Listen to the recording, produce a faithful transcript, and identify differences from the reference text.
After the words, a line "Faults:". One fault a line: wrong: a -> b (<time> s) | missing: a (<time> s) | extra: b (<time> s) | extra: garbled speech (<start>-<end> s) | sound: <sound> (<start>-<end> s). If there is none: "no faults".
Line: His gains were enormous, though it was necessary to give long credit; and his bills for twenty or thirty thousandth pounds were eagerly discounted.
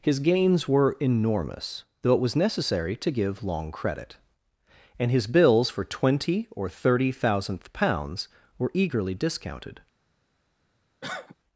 His gains were enormous, though it was necessary to give long credit; and his bills for twenty or thirty thousandth pounds were eagerly discounted.
Faults:
sound: cough (11.0-11.4 s)